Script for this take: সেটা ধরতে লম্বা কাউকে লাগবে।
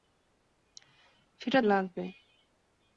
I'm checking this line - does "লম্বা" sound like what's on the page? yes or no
no